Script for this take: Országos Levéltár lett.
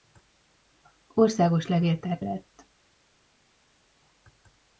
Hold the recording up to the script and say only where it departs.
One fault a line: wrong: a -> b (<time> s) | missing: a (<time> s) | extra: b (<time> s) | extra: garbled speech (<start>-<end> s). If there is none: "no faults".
no faults